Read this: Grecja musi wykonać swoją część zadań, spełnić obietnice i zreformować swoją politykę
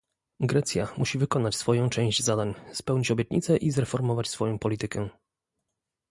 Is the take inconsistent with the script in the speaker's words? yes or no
no